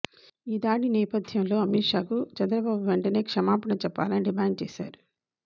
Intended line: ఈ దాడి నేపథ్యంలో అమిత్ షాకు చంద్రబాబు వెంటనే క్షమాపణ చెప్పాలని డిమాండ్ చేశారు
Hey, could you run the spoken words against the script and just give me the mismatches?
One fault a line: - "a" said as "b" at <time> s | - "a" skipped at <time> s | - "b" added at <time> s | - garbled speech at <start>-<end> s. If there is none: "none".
none